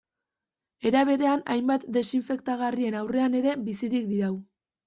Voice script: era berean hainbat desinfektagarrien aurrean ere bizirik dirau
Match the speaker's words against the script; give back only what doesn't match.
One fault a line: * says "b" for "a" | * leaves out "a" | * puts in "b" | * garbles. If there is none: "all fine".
all fine